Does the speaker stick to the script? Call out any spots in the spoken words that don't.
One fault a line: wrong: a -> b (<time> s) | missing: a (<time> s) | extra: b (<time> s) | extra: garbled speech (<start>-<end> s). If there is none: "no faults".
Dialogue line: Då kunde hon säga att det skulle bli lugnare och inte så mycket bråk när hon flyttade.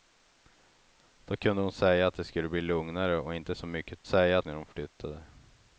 wrong: bråk -> säga (4.0 s)